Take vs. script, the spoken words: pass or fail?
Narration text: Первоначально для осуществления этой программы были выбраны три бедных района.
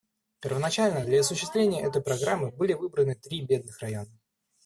pass